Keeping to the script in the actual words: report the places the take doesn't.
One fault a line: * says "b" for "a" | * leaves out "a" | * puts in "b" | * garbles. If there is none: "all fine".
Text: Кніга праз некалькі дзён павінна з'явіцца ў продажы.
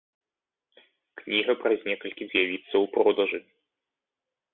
* leaves out "дзён павінна"